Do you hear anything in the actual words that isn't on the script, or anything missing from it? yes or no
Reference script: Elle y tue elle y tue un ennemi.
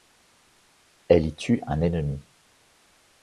yes